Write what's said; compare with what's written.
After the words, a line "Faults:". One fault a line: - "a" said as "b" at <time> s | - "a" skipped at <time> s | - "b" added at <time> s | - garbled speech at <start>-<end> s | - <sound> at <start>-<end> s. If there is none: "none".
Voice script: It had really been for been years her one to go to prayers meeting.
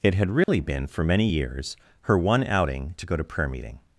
It had really been for many years her one outing to go to prayer meeting.
Faults:
- dropout at 0.4-0.5 s
- "been" said as "many" at 1.0 s
- "outing" added at 2.5 s
- "prayers" said as "prayer" at 3.2 s